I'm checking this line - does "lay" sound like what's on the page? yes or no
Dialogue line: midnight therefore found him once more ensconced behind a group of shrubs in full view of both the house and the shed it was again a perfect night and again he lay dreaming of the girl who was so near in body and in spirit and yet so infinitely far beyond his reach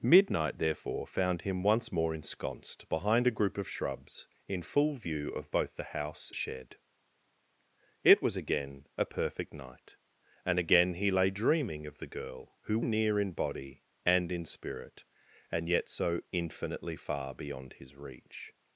yes